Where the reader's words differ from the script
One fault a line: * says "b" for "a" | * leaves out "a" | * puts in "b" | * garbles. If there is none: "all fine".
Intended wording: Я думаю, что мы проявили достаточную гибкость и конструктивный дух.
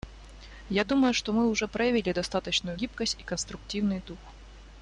* puts in "уже"